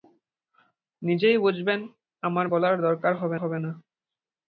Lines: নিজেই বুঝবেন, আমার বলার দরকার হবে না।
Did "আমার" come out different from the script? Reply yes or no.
no